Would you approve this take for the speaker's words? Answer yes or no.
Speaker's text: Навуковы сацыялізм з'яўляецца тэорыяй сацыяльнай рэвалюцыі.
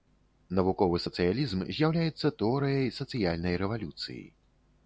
yes